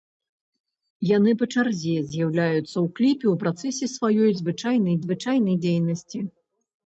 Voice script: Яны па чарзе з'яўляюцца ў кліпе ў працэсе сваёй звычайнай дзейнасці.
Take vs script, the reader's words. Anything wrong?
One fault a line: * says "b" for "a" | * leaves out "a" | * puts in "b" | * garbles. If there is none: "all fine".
* puts in "звычайнай"